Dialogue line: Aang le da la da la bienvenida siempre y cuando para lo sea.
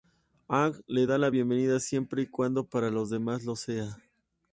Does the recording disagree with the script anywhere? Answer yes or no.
yes